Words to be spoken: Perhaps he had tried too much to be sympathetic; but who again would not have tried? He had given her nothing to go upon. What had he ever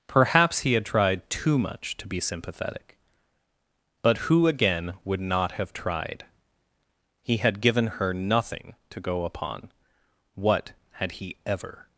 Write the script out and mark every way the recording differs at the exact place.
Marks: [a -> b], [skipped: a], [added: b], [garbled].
Perhaps he had tried too much to be sympathetic; but who again would not have tried? He had given her nothing to go upon. What had he ever